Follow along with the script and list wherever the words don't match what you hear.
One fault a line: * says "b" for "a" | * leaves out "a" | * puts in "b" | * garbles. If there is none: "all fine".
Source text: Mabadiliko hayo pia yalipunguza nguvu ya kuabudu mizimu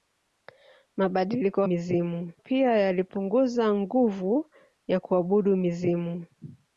* says "mizimu" for "hayo"